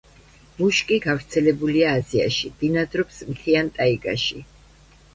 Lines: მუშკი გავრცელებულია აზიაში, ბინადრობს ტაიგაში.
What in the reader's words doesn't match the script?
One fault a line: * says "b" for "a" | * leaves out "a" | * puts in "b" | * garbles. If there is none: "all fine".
* puts in "მთიან"